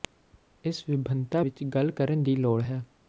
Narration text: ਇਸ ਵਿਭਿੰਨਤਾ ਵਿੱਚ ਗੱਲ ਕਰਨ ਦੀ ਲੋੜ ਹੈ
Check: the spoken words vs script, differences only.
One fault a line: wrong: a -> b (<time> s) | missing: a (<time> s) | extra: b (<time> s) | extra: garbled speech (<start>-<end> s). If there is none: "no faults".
no faults